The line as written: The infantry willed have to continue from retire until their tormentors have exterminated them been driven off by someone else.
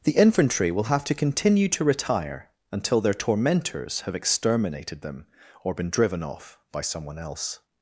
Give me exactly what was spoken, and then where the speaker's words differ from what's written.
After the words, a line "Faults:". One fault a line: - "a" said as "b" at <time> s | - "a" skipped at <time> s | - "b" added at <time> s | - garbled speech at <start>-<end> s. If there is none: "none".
The infantry will have to continue to retire until their tormentors have exterminated them or been driven off by someone else.
Faults:
- "willed" said as "will" at 0.7 s
- "from" said as "to" at 1.7 s
- "or" added at 5.6 s